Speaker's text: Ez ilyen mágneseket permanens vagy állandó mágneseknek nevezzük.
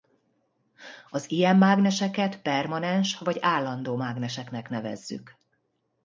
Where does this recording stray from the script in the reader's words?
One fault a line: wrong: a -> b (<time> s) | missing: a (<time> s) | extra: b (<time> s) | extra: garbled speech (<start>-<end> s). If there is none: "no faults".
wrong: Ez -> Az (1.1 s)